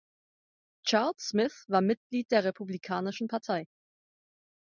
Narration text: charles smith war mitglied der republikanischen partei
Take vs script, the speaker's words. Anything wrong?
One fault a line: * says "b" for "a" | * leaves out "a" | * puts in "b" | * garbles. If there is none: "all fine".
all fine